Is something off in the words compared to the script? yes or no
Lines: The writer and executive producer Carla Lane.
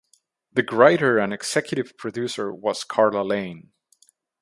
yes